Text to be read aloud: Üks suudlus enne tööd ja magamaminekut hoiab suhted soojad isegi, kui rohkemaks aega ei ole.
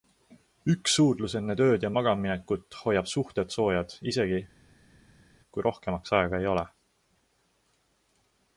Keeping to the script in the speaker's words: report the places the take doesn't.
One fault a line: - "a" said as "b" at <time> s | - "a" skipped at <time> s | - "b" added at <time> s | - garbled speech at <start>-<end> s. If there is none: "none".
none